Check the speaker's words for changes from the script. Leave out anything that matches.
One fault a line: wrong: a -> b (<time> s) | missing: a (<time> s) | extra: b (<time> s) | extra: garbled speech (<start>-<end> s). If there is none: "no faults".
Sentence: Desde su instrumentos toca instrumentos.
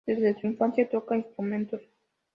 wrong: instrumentos -> infancia (0.5 s)